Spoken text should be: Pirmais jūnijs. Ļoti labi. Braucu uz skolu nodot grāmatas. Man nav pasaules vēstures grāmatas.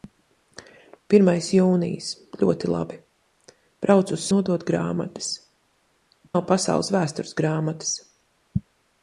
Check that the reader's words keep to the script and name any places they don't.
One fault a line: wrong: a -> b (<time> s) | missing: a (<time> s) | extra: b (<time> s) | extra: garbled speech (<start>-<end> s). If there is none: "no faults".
missing: skolu (4.2 s)
missing: Man (5.3 s)